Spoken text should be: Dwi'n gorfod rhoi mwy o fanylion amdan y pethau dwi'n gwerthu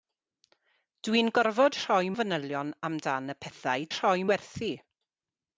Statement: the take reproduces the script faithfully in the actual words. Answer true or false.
false